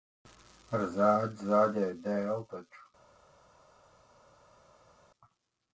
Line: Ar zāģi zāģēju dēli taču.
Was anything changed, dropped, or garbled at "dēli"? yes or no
no